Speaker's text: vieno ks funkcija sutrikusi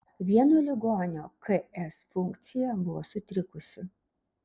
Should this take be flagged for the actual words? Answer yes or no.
yes